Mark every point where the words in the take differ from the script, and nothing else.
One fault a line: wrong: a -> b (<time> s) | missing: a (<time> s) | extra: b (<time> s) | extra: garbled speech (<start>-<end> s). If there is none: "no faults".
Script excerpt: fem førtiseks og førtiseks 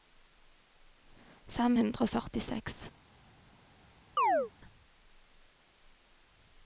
wrong: førtiseks -> hundre (1.8 s)